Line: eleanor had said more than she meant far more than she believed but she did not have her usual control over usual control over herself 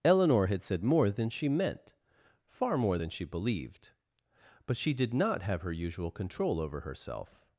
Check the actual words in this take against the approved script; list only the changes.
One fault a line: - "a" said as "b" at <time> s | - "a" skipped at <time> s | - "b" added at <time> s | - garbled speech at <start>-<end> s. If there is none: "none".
- "usual control over" skipped at 6.8 s